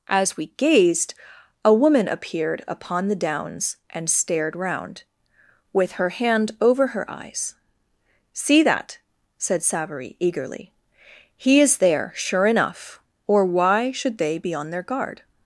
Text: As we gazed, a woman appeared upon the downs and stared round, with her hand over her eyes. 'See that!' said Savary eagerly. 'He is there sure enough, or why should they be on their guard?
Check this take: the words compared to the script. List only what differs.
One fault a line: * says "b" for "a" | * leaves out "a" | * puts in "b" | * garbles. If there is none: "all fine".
all fine